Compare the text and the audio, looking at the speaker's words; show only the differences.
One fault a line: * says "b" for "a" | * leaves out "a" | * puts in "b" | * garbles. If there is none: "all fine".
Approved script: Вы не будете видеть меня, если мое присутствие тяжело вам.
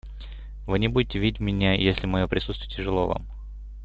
all fine